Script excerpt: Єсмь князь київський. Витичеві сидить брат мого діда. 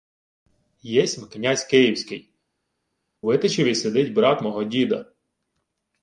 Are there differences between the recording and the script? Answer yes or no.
no